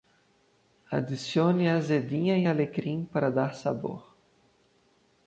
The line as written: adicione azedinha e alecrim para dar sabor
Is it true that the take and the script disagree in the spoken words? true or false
false